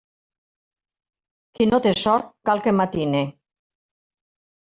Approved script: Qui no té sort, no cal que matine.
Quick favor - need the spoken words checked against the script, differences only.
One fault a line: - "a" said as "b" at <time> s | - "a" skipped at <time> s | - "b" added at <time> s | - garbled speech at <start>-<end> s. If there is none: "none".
- "no" skipped at 2.3 s